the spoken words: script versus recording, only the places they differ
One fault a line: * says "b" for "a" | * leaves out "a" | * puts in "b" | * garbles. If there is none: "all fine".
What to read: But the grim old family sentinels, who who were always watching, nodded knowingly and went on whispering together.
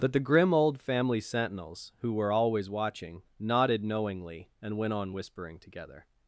* leaves out "who"